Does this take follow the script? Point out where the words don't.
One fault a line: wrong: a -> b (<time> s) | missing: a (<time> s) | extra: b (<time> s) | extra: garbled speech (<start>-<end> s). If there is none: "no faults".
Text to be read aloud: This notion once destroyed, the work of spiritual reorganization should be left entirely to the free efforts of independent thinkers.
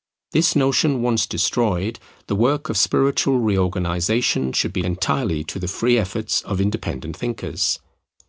missing: left (4.8 s)